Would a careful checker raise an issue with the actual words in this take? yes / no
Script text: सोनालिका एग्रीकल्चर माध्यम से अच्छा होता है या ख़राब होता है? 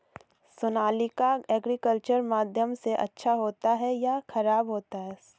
no